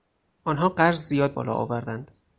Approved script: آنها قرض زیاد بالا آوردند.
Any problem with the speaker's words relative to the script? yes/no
no